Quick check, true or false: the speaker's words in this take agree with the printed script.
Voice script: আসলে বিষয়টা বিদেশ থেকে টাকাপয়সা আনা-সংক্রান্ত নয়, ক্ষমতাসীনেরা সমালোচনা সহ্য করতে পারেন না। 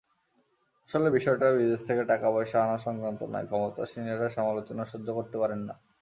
true